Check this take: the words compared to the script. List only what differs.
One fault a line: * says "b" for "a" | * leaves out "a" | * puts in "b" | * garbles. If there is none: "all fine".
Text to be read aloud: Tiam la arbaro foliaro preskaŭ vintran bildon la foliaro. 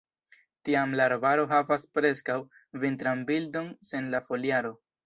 * says "havas" for "foliaro"
* puts in "sen"